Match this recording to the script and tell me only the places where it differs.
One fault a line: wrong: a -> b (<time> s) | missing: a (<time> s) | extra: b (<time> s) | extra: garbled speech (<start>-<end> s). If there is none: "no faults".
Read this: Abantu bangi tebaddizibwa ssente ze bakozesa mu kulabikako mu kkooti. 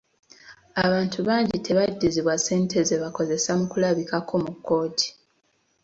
no faults